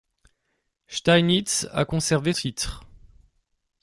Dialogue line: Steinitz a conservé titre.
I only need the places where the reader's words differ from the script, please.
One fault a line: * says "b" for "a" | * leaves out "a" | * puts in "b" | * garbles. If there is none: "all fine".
all fine